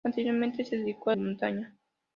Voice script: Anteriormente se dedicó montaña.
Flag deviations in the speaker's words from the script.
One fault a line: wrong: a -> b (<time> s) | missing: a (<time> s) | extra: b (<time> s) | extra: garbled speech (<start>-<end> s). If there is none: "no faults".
no faults